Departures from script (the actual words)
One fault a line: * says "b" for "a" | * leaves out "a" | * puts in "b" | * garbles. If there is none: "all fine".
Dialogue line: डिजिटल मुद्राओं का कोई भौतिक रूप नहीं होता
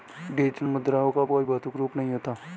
all fine